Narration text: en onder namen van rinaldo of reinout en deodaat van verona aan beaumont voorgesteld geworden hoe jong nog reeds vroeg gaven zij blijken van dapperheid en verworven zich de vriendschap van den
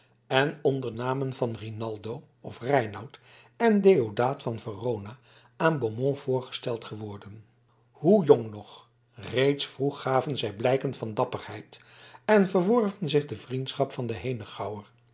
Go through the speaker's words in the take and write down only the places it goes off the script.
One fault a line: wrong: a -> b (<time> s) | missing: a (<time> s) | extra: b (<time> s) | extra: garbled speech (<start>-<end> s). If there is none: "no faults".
no faults